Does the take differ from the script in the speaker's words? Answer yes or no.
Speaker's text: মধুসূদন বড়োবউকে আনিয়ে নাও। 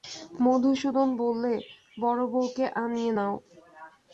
yes